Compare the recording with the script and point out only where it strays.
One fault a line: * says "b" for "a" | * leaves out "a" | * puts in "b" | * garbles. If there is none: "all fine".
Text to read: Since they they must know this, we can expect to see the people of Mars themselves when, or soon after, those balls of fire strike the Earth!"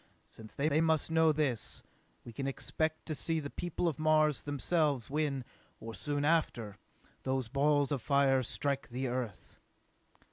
all fine